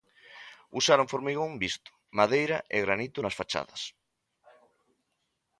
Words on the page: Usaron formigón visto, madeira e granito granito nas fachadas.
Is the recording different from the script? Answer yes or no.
yes